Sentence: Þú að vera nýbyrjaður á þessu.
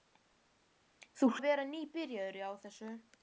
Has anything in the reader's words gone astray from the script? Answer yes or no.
no